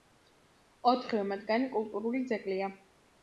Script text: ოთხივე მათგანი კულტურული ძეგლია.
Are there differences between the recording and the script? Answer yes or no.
no